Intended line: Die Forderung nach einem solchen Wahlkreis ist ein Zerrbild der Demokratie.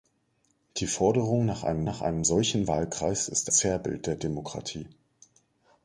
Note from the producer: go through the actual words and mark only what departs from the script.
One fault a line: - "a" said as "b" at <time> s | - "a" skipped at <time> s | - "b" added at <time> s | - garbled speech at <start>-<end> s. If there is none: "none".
- "nach einem" added at 1.8 s
- "ein" skipped at 3.5 s